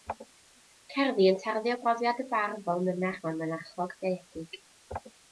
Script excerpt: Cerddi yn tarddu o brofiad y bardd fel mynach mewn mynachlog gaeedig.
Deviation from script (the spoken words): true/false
false